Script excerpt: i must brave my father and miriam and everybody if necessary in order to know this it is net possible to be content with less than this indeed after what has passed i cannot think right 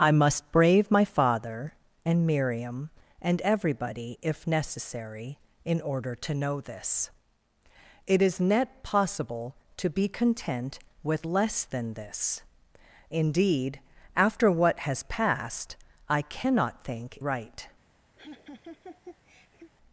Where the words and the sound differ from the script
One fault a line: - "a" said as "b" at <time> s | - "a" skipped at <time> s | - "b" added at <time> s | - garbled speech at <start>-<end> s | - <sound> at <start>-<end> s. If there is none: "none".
- laugh at 18.2-19.7 s